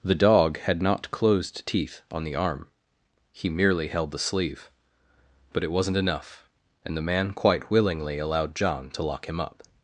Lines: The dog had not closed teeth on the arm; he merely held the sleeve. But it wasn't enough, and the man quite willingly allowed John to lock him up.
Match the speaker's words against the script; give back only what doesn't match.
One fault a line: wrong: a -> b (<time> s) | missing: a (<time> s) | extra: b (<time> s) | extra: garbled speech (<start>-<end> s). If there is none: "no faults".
no faults